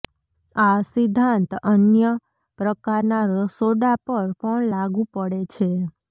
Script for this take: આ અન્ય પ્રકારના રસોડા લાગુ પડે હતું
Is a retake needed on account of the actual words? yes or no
yes